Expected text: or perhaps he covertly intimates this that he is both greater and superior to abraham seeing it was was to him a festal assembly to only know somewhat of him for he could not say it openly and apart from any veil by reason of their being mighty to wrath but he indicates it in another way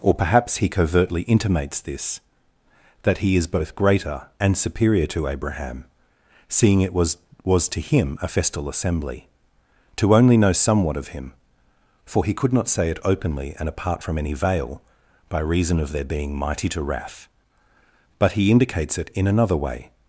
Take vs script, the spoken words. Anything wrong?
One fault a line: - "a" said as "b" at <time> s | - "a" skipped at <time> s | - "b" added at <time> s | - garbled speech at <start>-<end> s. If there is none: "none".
none